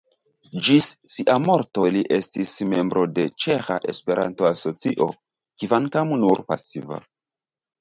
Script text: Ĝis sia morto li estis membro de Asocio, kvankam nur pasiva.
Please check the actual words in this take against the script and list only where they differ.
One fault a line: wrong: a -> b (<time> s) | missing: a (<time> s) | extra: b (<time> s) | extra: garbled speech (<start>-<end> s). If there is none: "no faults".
extra: Ĉeĥa Esperanto (3.5 s)